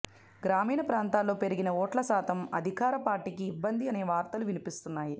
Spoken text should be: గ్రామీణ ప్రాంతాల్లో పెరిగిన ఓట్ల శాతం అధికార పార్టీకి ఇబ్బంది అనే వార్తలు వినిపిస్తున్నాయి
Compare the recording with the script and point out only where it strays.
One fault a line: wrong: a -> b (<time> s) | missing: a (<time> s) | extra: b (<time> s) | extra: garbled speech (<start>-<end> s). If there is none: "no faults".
no faults